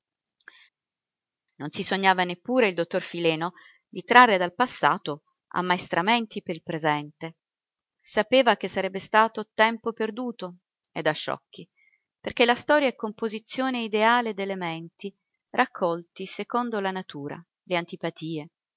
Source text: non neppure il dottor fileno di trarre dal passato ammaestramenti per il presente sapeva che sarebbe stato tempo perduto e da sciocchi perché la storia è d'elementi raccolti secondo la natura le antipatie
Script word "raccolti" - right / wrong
right